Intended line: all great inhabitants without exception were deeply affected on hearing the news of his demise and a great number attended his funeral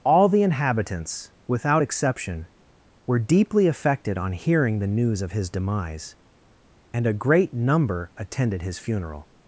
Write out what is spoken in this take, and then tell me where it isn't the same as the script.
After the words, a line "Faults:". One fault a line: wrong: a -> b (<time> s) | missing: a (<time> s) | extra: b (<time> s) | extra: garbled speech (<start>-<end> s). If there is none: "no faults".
all the inhabitants without exception were deeply affected on hearing the news of his demise and a great number attended his funeral
Faults:
wrong: great -> the (0.3 s)